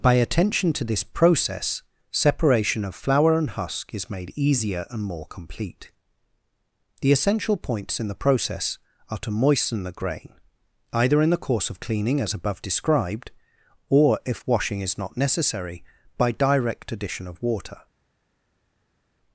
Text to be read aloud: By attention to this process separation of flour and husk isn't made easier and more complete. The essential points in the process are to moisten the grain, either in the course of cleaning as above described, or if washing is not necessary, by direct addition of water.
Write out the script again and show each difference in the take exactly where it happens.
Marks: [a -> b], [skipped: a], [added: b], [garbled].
By attention to this process separation of flour and husk [isn't -> is] made easier and more complete. The essential points in the process are to moisten the grain, either in the course of cleaning as above described, or if washing is not necessary, by direct addition of water.